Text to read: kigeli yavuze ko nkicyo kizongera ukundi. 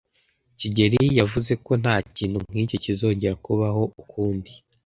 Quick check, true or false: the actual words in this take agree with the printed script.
false